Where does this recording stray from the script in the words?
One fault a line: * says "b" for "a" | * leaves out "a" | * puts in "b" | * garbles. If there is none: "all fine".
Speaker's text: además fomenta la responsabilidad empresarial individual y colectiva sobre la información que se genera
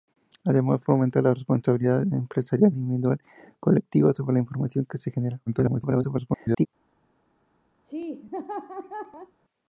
* garbles